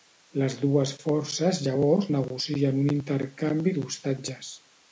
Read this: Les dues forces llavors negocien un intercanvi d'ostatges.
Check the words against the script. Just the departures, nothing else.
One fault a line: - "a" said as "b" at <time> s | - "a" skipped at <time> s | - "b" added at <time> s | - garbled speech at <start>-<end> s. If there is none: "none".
none